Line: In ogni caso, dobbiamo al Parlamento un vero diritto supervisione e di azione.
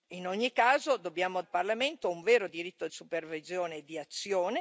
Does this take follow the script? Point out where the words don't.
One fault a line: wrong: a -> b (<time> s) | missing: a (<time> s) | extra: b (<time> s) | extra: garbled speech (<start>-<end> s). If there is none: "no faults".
no faults